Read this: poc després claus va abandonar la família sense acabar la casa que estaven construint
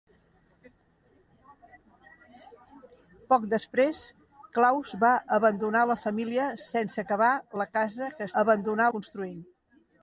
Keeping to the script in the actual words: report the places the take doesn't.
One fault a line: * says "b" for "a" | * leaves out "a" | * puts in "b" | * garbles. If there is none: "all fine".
* says "abandonar" for "estaven"